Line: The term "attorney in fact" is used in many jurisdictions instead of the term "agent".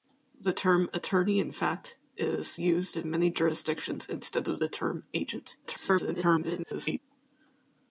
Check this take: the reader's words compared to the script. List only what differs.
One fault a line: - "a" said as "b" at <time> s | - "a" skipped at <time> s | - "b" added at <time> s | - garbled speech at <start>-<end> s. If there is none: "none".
- garbled speech at 5.6-7.0 s